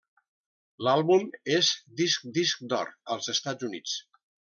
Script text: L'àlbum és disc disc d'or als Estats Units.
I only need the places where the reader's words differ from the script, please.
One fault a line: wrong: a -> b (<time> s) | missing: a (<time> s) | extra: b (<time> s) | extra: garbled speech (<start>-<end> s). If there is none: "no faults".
no faults